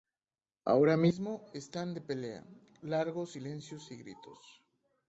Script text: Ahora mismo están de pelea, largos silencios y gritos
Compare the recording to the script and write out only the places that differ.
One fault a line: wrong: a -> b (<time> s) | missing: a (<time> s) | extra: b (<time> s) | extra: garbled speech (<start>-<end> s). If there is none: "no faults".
no faults